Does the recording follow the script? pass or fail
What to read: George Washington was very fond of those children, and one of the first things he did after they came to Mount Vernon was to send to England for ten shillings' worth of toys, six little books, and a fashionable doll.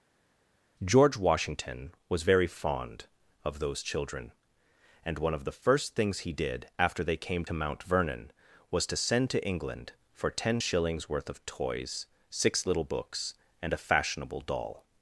pass